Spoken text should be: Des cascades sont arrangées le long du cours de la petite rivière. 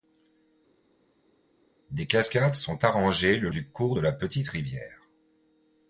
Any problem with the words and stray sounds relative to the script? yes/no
yes